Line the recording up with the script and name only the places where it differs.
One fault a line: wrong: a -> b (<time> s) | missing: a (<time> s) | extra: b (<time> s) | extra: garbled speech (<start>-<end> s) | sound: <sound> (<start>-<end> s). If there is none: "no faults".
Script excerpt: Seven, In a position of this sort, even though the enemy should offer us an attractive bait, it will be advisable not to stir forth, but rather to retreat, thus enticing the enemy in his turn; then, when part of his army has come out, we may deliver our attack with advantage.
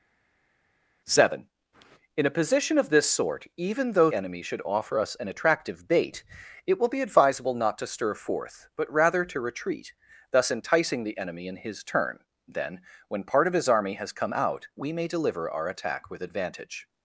missing: the (4.1 s)